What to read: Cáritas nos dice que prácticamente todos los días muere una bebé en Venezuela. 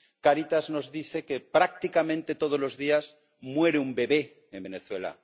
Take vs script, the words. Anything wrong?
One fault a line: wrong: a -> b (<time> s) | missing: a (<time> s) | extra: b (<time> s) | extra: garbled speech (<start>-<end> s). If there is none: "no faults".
wrong: una -> un (3.8 s)